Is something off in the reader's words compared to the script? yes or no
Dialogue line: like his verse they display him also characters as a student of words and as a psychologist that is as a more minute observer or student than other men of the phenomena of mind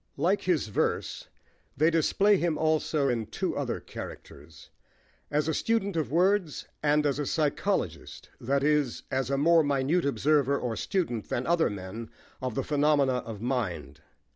yes